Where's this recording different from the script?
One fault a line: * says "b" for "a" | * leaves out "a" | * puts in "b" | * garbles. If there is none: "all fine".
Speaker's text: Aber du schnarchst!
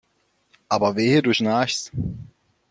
* puts in "wehe"